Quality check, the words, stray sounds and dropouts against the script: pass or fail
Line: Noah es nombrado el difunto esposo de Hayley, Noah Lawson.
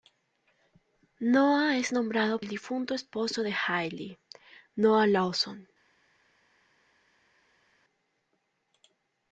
pass